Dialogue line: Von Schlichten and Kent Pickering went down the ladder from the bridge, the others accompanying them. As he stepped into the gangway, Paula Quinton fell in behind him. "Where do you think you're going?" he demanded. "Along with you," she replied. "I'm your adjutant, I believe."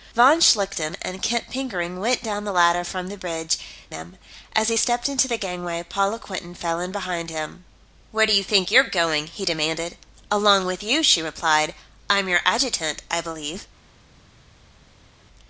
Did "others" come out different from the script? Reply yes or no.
yes